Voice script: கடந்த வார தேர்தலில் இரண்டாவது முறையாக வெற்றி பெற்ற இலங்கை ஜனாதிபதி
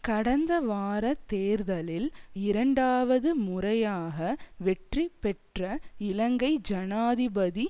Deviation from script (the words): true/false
false